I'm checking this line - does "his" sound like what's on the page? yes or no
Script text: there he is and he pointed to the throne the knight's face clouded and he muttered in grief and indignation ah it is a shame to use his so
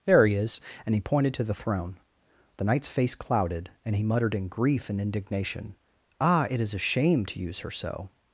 no